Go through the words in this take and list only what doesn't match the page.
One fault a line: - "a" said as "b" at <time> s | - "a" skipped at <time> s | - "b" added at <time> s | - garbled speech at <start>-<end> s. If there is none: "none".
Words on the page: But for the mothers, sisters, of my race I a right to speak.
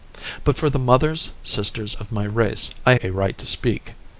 none